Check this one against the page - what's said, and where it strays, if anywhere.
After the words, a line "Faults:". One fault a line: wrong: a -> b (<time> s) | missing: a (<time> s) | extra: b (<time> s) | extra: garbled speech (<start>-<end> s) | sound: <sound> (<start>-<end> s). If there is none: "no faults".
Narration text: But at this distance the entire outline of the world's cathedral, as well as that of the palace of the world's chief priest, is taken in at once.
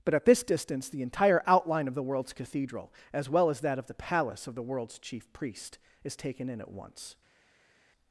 But at this distance the entire outline of the world's cathedral, as well as that of the palace of the world's chief priest, is taken in at once.
Faults:
no faults